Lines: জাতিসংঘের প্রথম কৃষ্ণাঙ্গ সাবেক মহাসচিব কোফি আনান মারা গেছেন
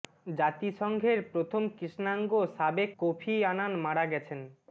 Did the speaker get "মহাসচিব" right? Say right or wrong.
wrong